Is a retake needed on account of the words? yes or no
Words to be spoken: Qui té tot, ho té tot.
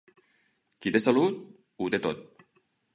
yes